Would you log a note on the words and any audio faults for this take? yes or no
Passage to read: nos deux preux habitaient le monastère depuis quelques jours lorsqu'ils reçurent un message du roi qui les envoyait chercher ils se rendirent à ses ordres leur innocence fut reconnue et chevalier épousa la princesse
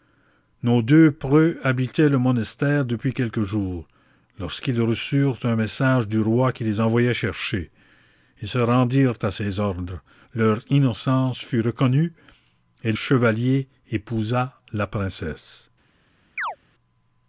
yes